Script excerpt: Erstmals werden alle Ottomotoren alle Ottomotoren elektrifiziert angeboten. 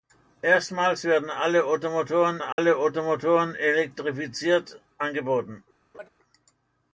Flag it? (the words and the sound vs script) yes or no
yes